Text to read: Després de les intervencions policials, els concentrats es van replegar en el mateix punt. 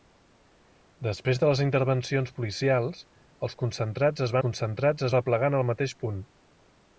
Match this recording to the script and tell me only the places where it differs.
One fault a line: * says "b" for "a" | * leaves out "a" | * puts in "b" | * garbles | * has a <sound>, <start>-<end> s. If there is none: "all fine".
* says "concentrats" for "van"